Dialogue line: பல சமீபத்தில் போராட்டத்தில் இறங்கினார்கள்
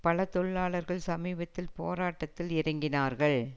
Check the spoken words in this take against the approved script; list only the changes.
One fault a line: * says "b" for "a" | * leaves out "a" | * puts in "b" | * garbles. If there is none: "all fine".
* puts in "தொழிலாளர்கள்"